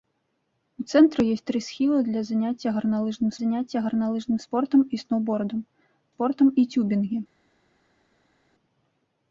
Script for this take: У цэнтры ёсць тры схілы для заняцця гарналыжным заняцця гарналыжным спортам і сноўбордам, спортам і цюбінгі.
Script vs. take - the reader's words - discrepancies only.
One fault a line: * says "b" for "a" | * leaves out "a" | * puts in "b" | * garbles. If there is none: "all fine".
all fine